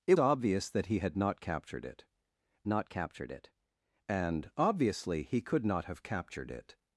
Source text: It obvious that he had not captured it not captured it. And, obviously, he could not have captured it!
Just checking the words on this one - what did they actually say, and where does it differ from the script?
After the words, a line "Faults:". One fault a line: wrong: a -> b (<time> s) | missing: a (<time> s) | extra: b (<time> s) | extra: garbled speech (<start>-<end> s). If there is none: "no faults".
It obvious that he had not captured it not captured it. And, obviously, he could not have captured it!
Faults:
no faults